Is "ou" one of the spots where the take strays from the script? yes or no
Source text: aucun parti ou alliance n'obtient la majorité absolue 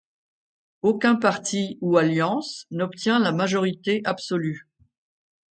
no